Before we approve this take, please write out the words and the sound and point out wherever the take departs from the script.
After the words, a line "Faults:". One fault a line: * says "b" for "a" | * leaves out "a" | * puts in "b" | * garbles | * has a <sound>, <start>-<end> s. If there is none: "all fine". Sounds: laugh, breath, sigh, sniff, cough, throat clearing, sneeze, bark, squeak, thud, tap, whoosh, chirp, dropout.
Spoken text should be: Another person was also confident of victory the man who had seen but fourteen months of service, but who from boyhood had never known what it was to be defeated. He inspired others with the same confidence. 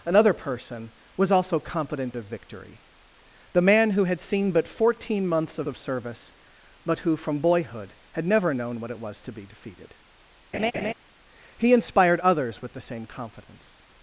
Another person was also confident of victory the man who had seen but fourteen months of of service, but who from boyhood had never known what it was to be defeated. He inspired others with the same confidence.
Faults:
* puts in "of"
* has a laugh, 10.5-10.9 s